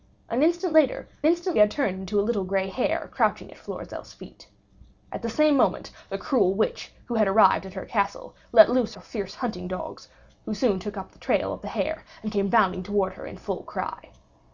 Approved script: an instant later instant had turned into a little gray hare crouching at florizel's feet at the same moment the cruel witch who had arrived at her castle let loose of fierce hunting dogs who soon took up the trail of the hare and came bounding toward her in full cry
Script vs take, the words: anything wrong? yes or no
no